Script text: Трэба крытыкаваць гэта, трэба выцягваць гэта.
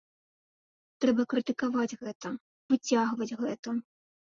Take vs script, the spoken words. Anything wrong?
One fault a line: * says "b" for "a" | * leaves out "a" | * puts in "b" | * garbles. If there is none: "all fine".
* leaves out "трэба"